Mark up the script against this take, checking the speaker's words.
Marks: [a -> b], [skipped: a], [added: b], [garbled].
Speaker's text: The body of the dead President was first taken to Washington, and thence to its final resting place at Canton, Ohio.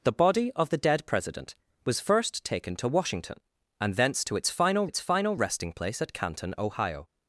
The body of the dead President was first taken to Washington, and thence to its final [added: its final] resting place at Canton, Ohio.